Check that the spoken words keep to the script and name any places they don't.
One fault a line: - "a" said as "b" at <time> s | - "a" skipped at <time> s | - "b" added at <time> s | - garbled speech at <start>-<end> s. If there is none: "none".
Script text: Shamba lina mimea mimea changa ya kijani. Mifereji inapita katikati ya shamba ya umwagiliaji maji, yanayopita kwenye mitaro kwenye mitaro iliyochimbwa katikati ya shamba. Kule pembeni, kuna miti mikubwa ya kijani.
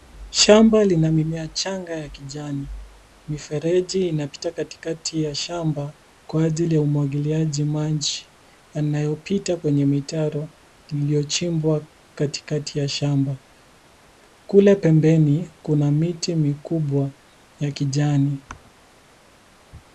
- "mimea" skipped at 1.5 s
- "kwa ajili" added at 6.3 s
- "kwenye mitaro" skipped at 10.5 s